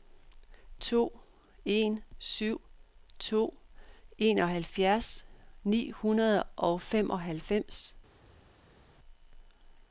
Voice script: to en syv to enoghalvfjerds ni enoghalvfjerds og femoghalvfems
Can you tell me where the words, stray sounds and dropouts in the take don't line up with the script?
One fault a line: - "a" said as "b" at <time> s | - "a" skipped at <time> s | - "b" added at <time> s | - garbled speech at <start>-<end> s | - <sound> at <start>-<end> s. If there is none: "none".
- "enoghalvfjerds" said as "hundrede" at 5.9 s